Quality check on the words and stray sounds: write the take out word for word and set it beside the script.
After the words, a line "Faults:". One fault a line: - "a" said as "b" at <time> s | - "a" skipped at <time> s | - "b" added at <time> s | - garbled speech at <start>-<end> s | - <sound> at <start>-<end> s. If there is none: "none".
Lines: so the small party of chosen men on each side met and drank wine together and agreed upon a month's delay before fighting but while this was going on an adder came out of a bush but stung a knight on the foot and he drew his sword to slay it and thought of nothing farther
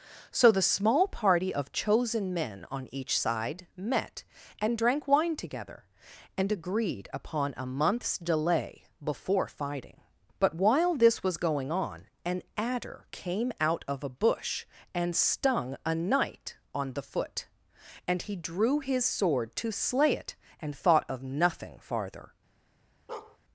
so the small party of chosen men on each side met and drank wine together and agreed upon a month's delay before fighting but while this was going on an adder came out of a bush and stung a knight on the foot and he drew his sword to slay it and thought of nothing farther
Faults:
- "but" said as "and" at 14.9 s
- bark at 23.1-23.4 s